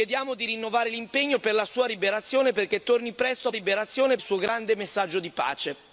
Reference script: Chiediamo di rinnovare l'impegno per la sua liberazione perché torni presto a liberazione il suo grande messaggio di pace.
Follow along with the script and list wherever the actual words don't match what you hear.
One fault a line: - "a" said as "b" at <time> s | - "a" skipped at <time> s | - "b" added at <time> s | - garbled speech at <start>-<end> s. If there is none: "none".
none